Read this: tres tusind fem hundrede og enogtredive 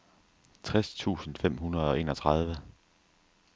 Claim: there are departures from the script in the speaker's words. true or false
false